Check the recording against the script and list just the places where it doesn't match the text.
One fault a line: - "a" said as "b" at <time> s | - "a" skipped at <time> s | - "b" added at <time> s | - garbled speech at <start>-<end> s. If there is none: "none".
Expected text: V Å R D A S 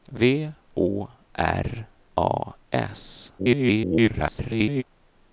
- "D" skipped at 1.9 s
- garbled speech at 3.4-4.8 s